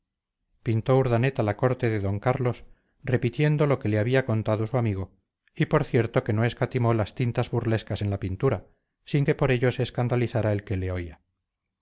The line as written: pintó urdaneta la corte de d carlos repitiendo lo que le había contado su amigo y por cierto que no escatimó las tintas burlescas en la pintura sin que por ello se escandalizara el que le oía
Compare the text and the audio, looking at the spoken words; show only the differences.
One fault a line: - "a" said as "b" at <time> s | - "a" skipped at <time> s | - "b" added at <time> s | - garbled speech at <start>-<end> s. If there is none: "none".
none